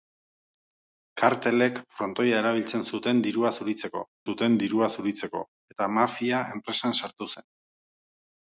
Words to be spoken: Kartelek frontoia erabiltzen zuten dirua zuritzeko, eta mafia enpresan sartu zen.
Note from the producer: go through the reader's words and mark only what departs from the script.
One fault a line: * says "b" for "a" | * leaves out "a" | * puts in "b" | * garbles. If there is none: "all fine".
* puts in "zuten dirua zuritzeko"